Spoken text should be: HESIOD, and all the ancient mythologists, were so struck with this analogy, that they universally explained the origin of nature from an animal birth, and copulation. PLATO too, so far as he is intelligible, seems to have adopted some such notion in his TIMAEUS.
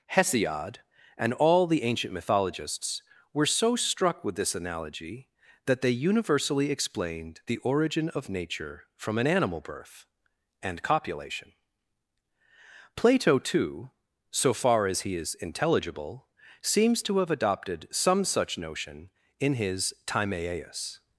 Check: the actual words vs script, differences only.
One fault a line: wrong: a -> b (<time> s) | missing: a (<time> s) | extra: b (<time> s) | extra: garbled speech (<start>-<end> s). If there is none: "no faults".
no faults